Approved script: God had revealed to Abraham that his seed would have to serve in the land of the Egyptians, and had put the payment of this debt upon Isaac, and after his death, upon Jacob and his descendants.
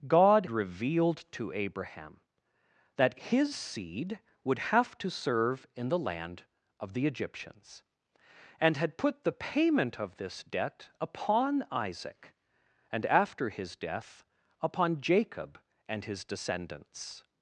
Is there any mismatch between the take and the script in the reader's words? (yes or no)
yes